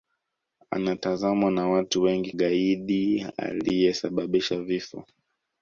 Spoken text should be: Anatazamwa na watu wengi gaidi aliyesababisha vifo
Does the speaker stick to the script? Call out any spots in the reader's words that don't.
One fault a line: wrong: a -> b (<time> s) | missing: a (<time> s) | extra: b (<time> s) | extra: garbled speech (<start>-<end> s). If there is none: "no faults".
no faults